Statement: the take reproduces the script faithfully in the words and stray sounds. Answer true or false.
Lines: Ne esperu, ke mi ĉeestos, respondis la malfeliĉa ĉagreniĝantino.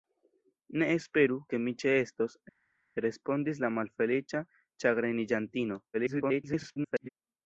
false